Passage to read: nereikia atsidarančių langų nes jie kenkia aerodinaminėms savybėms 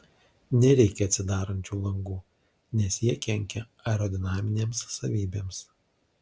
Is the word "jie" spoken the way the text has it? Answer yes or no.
yes